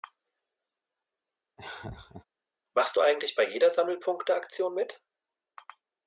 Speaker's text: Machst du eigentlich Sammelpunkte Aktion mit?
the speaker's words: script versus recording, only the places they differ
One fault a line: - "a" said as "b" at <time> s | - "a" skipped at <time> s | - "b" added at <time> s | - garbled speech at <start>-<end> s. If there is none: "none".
- "bei jeder" added at 3.3 s